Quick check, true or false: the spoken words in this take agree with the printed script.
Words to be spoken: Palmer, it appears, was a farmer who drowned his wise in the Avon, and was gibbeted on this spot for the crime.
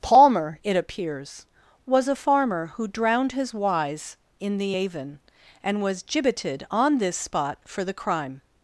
true